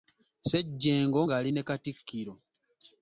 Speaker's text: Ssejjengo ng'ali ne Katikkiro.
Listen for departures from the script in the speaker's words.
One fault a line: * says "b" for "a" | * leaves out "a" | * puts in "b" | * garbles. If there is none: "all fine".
all fine